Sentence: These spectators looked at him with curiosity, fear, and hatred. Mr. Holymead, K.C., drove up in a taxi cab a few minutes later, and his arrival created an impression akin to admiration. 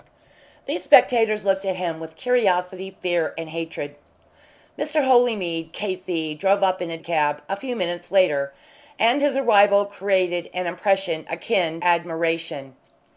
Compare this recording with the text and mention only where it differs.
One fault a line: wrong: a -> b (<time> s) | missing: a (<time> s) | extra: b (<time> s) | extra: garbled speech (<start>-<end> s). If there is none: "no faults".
missing: taxi (7.0 s)
missing: to (11.8 s)